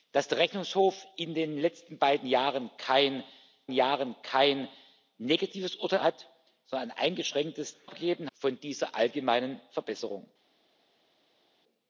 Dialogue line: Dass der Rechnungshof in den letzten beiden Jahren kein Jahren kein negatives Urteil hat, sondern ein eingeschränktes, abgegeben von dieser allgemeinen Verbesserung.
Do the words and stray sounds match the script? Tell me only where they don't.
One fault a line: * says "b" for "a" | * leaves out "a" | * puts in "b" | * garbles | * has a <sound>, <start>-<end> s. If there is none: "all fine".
all fine